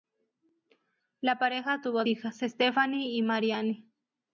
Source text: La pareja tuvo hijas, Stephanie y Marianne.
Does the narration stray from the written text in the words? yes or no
no